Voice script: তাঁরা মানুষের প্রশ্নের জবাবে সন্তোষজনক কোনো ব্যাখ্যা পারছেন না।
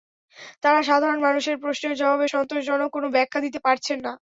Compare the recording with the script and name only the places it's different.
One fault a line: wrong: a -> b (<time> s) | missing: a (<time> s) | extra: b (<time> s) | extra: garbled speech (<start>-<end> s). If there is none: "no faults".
extra: সাধারণ (0.9 s)
extra: দিতে (3.4 s)